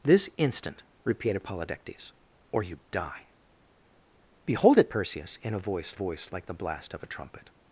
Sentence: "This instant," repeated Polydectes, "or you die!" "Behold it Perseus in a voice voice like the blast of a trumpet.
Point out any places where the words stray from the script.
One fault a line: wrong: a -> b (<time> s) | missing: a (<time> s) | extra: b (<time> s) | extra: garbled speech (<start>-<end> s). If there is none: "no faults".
no faults